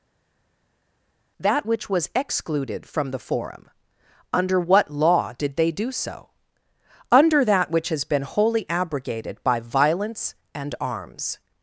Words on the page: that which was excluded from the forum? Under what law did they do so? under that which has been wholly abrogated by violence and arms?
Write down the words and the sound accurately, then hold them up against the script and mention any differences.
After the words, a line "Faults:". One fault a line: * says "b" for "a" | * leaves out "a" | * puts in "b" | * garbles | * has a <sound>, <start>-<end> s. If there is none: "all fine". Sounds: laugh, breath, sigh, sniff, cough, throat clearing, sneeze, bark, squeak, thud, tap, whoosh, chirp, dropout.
that which was excluded from the forum? Under what law did they do so? under that which has been wholly abrogated by violence and arms?
Faults:
all fine